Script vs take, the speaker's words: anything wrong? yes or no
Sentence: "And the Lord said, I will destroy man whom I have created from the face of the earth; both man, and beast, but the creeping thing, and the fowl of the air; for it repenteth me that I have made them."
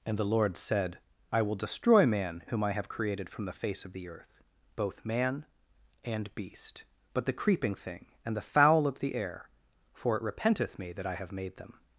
no